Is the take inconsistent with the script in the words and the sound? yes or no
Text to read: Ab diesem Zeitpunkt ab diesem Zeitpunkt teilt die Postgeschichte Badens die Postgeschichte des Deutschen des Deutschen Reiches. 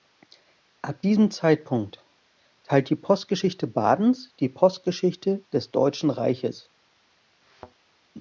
yes